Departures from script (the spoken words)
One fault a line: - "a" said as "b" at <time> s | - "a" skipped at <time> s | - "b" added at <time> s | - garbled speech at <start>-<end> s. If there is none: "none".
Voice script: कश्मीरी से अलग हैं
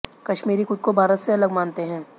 - "खुद को भारत" added at 0.6 s
- "मानते" added at 1.5 s